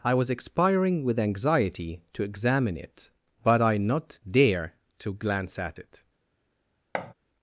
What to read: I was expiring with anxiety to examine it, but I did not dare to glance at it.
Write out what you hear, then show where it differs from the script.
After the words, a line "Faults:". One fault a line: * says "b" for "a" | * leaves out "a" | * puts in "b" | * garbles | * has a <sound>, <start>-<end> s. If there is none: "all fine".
I was expiring with anxiety to examine it, but I not dare to glance at it.
Faults:
* leaves out "did"
* has a thud, 6.9-7.1 s